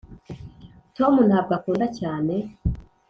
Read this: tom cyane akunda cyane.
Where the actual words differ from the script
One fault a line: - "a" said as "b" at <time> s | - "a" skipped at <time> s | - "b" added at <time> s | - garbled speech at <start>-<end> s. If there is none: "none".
- "cyane" said as "ntabwo" at 1.3 s